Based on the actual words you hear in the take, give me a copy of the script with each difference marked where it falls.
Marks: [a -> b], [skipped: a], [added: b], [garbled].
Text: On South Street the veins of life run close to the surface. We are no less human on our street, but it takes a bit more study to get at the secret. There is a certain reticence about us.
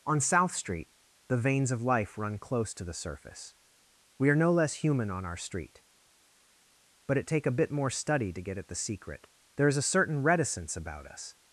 On South Street the veins of life run close to the surface. We are no less human on our street, but it [takes -> take] a bit more study to get at the secret. There is a certain reticence about us.